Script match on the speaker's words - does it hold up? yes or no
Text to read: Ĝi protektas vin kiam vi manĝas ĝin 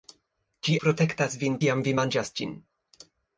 yes